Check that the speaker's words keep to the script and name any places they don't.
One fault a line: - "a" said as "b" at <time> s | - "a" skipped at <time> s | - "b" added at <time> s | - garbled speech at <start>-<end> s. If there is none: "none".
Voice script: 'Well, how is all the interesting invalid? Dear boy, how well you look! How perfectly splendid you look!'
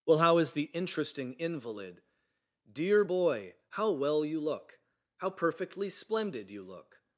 - "all" skipped at 0.5 s